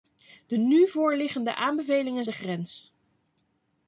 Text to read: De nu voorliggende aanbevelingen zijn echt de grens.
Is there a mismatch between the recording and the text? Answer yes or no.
yes